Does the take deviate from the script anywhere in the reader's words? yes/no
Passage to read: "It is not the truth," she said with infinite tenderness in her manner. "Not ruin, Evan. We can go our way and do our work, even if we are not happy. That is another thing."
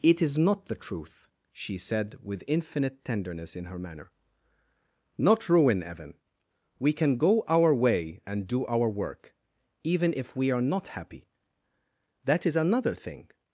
no